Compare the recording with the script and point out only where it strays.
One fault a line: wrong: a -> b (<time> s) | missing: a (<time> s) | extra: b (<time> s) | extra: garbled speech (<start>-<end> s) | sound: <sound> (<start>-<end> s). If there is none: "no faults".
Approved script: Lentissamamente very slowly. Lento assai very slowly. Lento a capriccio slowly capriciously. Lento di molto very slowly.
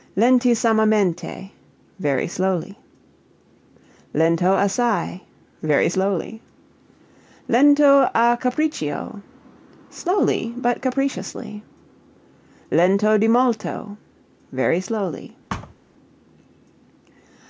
extra: but (10.5 s)
sound: thud (15.5-15.7 s)